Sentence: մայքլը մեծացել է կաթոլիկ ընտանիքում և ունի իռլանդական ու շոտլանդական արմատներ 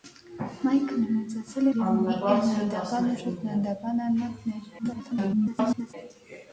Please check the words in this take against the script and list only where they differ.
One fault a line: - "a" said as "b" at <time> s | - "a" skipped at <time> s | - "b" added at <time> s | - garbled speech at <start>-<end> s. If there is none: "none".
- "կաթոլիկ ընտանիքում" skipped at 1.7 s
- garbled speech at 4.8-5.9 s